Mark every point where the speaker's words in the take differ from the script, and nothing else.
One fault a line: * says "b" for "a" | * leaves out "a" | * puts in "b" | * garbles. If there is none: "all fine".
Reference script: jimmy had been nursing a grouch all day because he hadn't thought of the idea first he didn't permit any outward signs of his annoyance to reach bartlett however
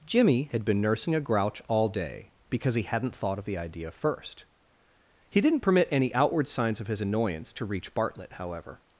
all fine